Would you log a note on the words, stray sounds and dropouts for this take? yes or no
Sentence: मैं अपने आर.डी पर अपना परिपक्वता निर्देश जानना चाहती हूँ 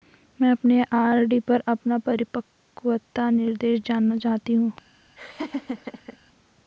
yes